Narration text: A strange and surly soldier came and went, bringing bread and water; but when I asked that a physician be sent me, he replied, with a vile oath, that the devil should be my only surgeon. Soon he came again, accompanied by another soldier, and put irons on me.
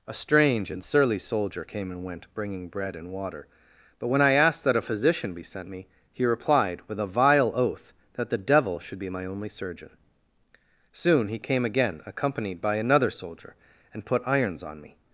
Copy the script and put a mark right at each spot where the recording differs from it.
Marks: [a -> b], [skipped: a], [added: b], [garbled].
A strange and surly soldier came and went, bringing bread and water; but when I asked that a physician be sent me, he replied, with a vile oath, that the devil should be my only surgeon. Soon he came again, accompanied by another soldier, and put irons on me.